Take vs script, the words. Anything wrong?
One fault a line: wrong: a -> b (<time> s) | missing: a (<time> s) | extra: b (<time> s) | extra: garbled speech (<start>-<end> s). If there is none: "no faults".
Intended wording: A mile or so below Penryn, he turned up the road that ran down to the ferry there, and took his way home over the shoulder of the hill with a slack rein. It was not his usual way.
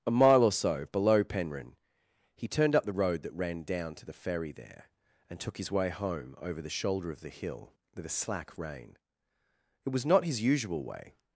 no faults